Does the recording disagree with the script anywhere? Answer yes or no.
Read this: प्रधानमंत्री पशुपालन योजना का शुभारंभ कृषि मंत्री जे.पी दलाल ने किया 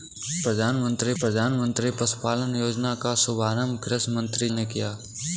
yes